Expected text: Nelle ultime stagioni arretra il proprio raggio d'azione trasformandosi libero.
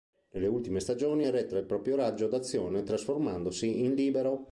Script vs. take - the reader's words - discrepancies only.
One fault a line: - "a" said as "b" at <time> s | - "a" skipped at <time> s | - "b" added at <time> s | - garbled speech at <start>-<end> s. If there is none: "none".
- "in" added at 3.8 s